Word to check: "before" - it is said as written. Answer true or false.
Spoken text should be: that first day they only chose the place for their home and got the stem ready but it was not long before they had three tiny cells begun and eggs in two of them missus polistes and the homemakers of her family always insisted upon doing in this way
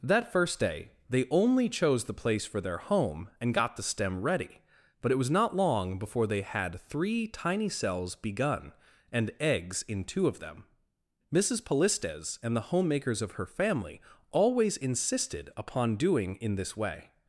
true